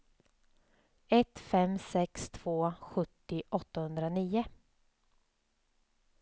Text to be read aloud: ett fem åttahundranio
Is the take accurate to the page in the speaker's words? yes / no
no